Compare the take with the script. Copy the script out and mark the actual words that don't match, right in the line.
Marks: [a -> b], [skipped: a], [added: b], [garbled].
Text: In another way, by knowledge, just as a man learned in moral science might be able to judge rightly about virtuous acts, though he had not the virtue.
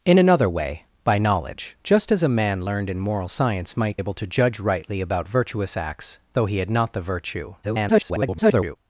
In another way, by knowledge, just as a man learned in moral science might [skipped: be] able to judge rightly about virtuous acts, though he had not the virtue. [garbled]